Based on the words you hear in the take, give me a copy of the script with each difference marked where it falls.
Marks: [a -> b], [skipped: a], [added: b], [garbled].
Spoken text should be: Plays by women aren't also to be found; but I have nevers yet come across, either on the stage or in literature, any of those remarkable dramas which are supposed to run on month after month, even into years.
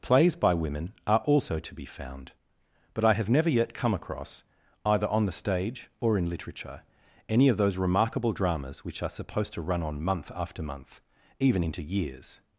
Plays by women [aren't -> are] also to be found; but I have [nevers -> never] yet come across, either on the stage or in literature, any of those remarkable dramas which are supposed to run on month after month, even into years.